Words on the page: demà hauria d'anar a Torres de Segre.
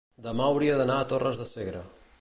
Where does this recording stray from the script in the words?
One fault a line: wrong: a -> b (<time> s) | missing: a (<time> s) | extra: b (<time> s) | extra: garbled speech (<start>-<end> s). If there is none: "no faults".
no faults